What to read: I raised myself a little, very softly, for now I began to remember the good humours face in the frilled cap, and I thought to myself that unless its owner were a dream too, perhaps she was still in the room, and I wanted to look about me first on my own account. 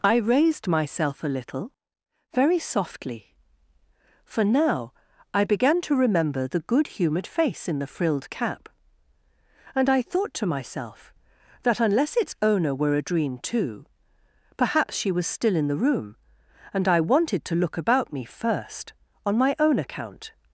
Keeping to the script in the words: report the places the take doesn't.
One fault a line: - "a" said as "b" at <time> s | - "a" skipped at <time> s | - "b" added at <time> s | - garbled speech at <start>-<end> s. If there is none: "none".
- "humours" said as "humoured" at 7.0 s